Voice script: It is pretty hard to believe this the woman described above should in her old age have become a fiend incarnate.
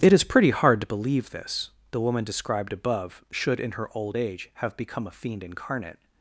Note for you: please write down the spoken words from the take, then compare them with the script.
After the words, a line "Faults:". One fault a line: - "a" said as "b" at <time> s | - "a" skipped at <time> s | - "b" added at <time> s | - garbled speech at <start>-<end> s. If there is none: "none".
It is pretty hard to believe this the woman described above should in her old age have become a fiend incarnate.
Faults:
none